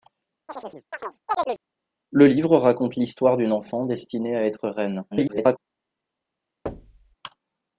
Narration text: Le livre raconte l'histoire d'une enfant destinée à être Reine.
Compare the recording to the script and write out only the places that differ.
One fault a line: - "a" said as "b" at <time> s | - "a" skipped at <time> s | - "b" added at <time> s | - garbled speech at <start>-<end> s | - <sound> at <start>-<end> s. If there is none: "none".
- chirp at 0.5-1.6 s
- garbled speech at 5.1-5.6 s
- thud at 6.7-7.2 s